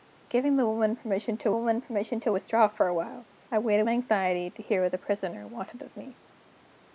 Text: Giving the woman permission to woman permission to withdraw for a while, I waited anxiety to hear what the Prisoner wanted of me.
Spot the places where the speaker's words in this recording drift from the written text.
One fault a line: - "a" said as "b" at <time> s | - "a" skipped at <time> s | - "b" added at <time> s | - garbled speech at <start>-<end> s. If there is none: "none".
none